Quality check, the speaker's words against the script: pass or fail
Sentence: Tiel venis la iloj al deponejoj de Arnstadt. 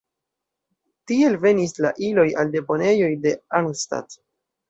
pass